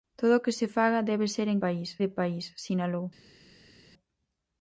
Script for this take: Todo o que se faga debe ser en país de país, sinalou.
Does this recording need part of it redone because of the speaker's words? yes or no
no